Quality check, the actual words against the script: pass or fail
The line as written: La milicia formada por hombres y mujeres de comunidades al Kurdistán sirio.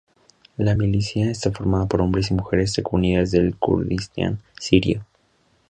fail